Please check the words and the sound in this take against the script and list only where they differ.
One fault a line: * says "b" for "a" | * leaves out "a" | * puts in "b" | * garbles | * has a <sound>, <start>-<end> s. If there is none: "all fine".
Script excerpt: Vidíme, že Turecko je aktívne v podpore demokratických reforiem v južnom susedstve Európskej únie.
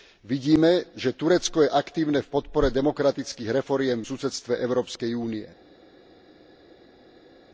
* leaves out "v južnom"